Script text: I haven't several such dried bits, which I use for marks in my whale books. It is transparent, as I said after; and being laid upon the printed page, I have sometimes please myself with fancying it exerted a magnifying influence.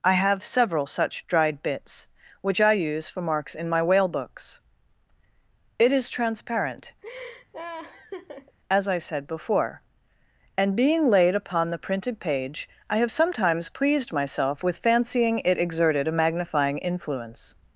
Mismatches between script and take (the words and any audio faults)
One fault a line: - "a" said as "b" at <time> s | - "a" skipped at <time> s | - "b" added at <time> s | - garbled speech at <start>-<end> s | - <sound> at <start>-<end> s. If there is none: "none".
- "haven't" said as "have" at 0.1 s
- laugh at 7.0-8.6 s
- "after" said as "before" at 9.3 s
- "please" said as "pleased" at 13.7 s